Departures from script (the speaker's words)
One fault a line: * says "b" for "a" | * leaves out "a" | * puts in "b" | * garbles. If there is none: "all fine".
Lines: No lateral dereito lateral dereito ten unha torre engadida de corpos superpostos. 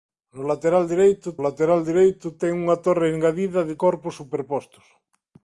all fine